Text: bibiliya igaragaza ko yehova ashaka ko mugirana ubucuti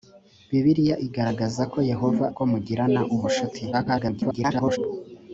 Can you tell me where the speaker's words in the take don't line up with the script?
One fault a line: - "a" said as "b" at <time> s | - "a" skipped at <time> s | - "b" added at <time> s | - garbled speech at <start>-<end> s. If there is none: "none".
- "ashaka" skipped at 2.2 s
- garbled speech at 3.7-4.8 s